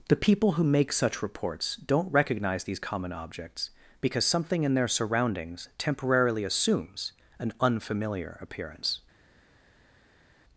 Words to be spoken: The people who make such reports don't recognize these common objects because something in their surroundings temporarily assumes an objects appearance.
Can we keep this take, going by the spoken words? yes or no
no